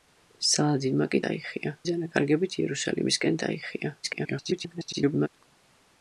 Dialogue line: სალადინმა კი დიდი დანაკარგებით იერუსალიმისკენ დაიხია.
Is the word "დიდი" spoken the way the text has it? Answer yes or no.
no